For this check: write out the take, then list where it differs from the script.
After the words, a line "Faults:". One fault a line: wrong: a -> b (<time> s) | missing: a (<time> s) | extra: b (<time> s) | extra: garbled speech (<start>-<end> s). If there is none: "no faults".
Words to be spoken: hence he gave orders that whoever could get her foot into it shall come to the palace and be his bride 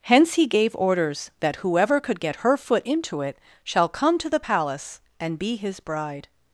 hence he gave orders that whoever could get her foot into it shall come to the palace and be his bride
Faults:
no faults